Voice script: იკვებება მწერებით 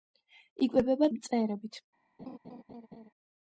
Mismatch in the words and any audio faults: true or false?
true